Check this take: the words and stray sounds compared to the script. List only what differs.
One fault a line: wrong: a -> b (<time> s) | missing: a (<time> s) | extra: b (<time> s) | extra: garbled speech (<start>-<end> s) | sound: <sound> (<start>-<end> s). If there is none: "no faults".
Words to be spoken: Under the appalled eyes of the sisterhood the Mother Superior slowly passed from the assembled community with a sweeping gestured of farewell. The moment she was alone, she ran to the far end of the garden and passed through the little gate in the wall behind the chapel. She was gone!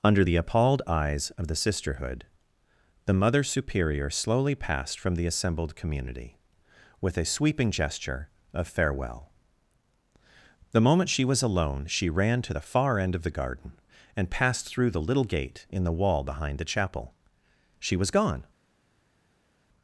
wrong: gestured -> gesture (7.7 s)